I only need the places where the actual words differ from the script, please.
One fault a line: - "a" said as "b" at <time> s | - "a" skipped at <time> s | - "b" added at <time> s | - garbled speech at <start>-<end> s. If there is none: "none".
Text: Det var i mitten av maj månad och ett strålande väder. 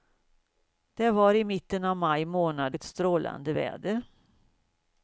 - "och" skipped at 2.8 s